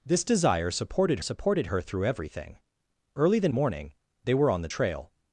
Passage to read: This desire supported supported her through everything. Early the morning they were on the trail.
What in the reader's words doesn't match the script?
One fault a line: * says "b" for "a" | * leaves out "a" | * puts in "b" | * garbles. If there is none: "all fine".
all fine